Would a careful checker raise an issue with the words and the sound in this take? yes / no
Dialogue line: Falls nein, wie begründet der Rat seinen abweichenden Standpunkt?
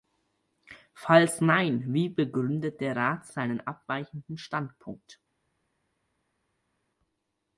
no